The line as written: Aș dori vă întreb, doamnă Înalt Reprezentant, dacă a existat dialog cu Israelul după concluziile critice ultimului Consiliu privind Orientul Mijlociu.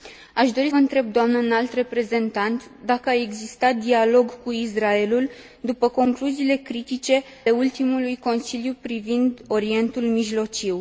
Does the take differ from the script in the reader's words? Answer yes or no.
no